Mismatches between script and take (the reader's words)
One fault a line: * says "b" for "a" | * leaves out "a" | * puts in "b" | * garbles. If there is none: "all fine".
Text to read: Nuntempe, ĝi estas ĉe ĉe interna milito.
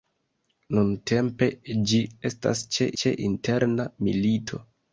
all fine